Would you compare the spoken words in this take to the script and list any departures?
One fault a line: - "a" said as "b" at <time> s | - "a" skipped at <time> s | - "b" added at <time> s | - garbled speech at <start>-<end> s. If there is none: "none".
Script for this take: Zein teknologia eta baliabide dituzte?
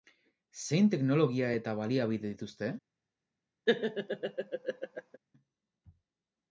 none